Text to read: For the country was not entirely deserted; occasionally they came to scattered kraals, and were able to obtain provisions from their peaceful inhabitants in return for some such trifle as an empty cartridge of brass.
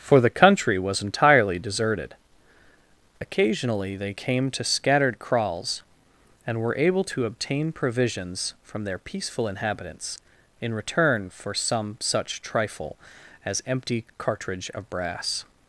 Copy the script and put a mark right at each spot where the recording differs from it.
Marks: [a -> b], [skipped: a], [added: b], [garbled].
For the country was [skipped: not] entirely deserted; occasionally they came to scattered kraals, and were able to obtain provisions from their peaceful inhabitants in return for some such trifle as [skipped: an] empty cartridge of brass.